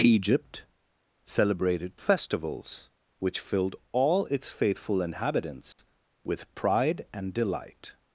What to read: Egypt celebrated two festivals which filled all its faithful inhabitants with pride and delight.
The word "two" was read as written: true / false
false